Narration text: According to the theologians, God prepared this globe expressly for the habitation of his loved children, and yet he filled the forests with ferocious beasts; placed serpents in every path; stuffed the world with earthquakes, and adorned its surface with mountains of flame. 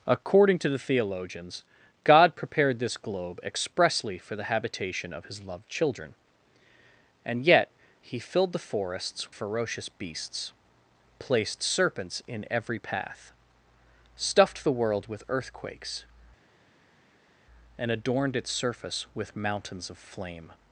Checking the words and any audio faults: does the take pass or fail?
fail